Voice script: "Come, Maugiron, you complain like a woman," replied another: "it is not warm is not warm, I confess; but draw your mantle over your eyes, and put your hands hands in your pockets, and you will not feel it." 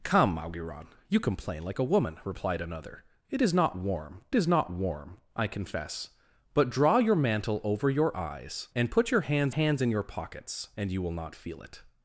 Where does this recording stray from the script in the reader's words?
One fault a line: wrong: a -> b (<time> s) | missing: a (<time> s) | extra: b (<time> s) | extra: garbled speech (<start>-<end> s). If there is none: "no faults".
no faults